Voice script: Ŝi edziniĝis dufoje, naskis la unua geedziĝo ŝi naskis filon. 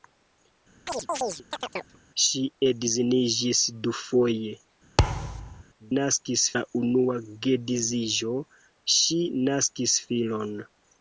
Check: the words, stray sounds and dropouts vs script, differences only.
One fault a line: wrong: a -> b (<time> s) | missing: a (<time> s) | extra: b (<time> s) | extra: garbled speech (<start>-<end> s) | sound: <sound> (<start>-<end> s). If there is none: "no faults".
sound: chirp (0.9-2.0 s)
sound: thud (5.0-5.6 s)